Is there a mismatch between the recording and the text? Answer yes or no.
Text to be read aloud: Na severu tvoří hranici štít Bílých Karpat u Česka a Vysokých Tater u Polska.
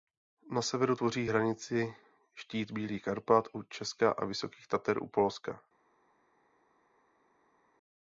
no